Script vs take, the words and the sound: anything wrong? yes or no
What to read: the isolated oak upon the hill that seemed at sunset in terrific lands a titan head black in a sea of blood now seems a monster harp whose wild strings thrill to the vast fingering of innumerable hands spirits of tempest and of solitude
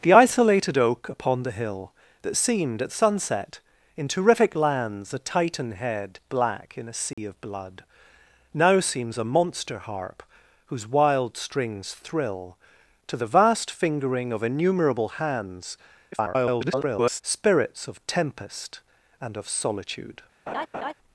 yes